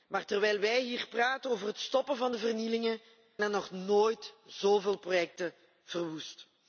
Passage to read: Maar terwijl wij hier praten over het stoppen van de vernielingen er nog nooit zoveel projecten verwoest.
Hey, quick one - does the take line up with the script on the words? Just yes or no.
yes